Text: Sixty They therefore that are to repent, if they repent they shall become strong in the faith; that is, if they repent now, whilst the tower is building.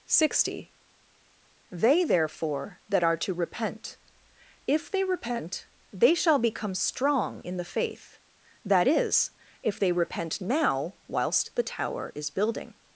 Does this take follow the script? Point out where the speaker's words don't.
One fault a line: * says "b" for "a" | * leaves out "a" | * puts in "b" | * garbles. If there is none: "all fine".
all fine